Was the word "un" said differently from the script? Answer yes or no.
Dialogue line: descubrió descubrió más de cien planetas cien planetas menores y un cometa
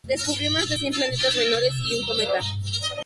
no